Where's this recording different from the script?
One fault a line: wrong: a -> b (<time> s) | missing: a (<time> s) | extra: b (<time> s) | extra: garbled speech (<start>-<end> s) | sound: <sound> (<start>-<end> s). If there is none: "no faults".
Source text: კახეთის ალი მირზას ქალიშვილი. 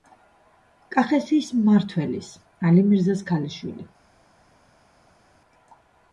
extra: მმართველის (1.6 s)